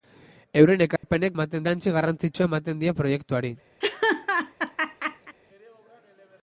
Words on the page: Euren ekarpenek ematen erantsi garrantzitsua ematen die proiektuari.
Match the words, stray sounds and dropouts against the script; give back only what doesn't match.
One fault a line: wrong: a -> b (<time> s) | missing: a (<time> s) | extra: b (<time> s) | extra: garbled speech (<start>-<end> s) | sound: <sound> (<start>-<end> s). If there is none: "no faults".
sound: dropout (1.0-1.0 s)
sound: laugh (3.8-5.4 s)